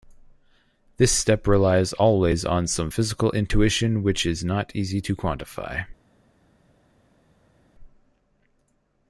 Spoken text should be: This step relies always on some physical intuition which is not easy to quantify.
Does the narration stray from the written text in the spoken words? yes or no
no